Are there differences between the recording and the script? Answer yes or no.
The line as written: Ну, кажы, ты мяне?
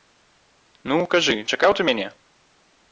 yes